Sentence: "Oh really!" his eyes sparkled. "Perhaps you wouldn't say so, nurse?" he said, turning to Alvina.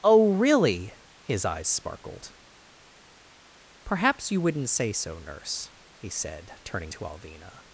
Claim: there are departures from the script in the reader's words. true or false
false